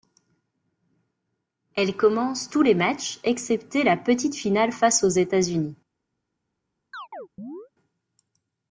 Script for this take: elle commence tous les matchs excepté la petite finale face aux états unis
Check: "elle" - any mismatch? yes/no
no